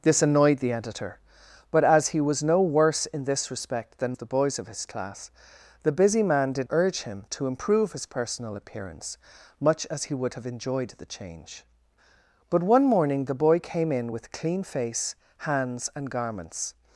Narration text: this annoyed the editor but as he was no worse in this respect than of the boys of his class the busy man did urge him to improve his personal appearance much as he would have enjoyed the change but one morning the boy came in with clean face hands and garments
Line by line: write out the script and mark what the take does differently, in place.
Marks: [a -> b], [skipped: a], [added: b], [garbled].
this annoyed the editor but as he was no worse in this respect than of the boys of his class the busy man did urge him to improve his personal appearance much as he would have enjoyed the change but one morning the boy came in with clean face hands and garments